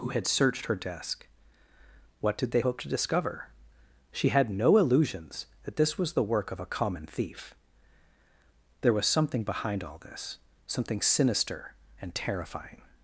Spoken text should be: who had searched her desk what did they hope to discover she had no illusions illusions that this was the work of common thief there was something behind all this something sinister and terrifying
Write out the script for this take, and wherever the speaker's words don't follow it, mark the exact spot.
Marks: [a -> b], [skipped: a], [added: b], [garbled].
who had searched her desk what did they hope to discover she had no illusions [skipped: illusions] that this was the work of [added: a] common thief there was something behind all this something sinister and terrifying